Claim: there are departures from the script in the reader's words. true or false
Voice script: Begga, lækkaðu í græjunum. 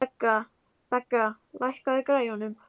false